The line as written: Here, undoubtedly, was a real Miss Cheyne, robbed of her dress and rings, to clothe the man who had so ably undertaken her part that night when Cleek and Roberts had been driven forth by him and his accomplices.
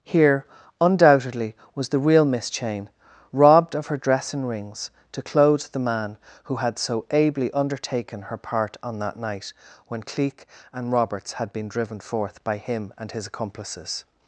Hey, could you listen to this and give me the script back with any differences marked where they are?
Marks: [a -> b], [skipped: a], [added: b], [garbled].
Here, undoubtedly, was [a -> the] real Miss Cheyne, robbed of her dress and rings, to clothe the man who had so ably undertaken her part [added: on] that night when Cleek and Roberts had been driven forth by him and his accomplices.